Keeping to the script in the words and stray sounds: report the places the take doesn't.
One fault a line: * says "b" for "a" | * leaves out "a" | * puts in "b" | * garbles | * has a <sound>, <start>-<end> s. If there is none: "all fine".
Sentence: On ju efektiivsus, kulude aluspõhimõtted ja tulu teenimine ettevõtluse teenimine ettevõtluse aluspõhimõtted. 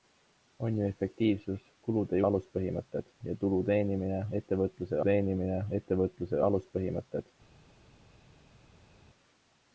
all fine